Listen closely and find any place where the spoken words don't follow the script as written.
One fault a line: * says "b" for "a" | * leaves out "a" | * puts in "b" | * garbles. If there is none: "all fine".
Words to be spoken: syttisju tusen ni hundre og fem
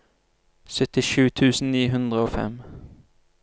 all fine